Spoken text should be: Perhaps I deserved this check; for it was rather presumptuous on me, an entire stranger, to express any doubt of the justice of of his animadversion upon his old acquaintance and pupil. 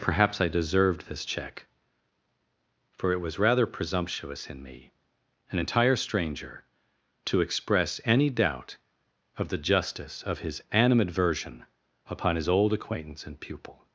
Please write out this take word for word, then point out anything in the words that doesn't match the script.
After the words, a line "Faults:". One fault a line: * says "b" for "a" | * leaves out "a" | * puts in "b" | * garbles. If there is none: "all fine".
Perhaps I deserved this check; for it was rather presumptuous in me, an entire stranger, to express any doubt of the justice of his animadversion upon his old acquaintance and pupil.
Faults:
* says "in" for "on"
* leaves out "of"